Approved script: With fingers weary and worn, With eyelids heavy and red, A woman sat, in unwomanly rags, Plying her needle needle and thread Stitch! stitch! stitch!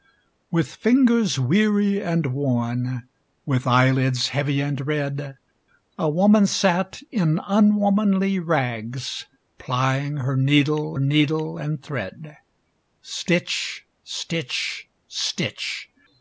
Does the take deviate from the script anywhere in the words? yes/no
no